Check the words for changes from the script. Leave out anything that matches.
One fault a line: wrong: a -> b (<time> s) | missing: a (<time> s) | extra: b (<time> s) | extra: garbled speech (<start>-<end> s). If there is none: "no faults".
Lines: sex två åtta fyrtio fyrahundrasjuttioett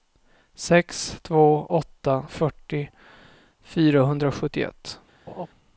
no faults